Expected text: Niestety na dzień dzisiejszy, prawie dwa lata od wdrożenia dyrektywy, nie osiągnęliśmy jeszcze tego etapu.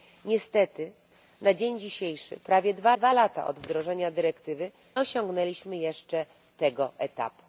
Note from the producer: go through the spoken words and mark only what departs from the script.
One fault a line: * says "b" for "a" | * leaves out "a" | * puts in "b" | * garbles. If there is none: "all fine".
* puts in "dwa"
* leaves out "nie"